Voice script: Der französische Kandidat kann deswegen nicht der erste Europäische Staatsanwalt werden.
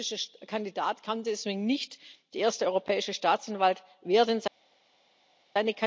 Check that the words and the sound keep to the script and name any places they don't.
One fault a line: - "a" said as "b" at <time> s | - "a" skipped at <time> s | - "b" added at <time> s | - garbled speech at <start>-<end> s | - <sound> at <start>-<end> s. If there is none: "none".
none